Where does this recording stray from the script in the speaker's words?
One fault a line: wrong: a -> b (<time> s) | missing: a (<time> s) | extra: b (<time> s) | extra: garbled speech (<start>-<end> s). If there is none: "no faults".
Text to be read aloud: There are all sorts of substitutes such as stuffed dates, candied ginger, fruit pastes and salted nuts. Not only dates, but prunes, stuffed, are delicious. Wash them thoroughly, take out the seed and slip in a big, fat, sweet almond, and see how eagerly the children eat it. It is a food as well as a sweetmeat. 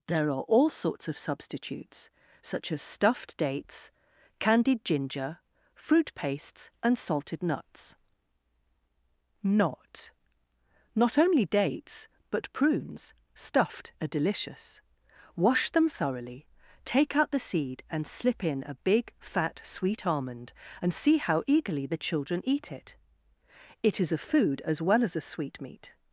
extra: Not (10.9 s)